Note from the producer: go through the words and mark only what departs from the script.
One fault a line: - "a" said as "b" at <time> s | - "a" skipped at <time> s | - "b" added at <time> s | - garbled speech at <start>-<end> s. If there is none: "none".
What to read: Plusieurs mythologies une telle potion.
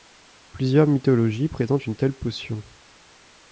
- "présentent" added at 1.5 s